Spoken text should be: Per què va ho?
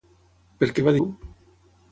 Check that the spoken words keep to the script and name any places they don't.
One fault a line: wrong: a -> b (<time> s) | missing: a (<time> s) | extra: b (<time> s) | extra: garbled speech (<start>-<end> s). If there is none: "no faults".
no faults